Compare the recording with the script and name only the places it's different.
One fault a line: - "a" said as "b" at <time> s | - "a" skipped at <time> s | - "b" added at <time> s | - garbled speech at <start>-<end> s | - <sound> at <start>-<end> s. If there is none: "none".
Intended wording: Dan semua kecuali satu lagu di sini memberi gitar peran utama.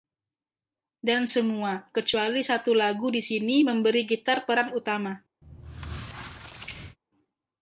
- squeak at 5.4-7.0 s